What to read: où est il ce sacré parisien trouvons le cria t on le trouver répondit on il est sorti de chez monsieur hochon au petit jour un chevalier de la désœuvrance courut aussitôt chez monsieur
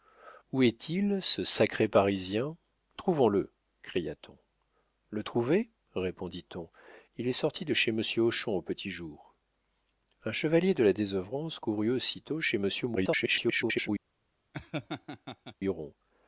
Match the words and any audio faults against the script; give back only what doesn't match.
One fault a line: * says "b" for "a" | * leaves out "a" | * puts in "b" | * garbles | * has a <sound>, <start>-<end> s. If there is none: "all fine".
* garbles
* has a laugh, 14.5-15.6 s